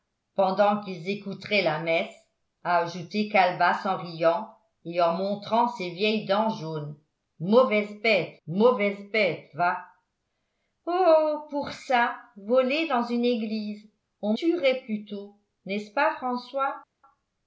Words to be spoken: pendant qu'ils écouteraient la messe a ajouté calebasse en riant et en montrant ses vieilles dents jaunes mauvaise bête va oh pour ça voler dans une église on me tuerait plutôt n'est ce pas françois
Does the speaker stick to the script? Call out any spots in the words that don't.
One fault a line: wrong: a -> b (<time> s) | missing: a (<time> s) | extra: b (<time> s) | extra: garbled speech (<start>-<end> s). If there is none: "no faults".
extra: mauvaise bête (8.5 s)
missing: me (14.3 s)